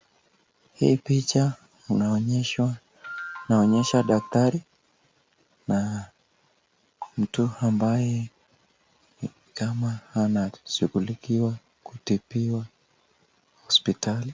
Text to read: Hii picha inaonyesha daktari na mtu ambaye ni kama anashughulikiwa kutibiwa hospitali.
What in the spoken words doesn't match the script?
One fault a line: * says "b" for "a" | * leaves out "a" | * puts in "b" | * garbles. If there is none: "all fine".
all fine